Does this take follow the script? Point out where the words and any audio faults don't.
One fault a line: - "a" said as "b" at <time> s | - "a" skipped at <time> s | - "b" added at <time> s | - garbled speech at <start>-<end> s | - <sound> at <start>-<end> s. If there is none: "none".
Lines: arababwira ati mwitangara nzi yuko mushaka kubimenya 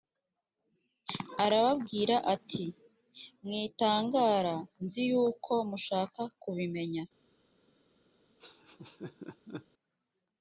- laugh at 8.4-9.7 s